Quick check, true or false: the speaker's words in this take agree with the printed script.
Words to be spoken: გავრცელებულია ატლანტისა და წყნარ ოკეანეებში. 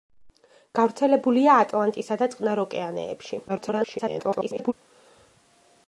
false